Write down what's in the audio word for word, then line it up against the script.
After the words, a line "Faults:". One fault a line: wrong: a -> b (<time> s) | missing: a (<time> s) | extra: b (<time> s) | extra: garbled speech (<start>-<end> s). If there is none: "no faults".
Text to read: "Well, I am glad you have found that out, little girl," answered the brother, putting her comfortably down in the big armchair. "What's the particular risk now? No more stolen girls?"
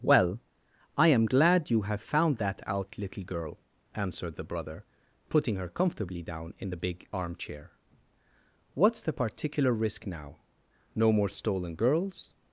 "Well, I am glad you have found that out, little girl," answered the brother, putting her comfortably down in the big armchair. "What's the particular risk now? No more stolen girls?"
Faults:
no faults